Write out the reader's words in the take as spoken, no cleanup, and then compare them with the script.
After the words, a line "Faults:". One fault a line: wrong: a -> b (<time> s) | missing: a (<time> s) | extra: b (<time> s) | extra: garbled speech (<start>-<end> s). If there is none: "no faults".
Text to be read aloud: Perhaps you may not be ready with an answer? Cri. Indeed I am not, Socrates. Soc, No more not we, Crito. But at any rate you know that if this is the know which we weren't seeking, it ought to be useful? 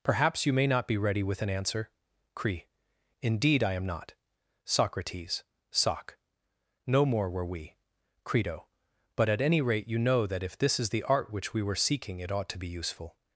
Perhaps you may not be ready with an answer? Cri. Indeed I am not, Socrates. Soc, No more were we, Crito. But at any rate you know that if this is the art which we were seeking, it ought to be useful?
Faults:
wrong: not -> were (7.3 s)
wrong: know -> art (11.0 s)
wrong: weren't -> were (11.6 s)